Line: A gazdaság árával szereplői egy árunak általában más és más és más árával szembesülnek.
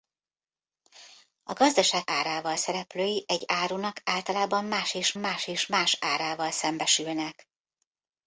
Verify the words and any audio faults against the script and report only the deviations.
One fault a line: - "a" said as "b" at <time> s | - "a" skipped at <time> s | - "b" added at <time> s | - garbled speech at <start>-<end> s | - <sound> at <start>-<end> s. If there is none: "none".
none